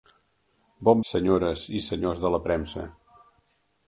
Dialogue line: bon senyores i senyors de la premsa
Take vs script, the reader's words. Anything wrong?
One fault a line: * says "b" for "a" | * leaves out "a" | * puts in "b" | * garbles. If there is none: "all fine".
all fine